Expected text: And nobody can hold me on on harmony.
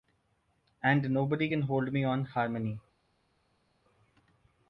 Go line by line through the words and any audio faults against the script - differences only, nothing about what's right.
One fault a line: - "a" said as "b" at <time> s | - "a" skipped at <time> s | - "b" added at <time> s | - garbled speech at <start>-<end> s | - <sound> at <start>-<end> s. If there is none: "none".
- "on" skipped at 2.2 s